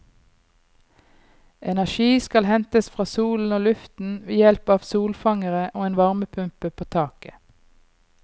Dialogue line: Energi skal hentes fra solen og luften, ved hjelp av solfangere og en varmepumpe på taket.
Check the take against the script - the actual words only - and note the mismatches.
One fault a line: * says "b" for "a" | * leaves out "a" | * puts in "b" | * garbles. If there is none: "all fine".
all fine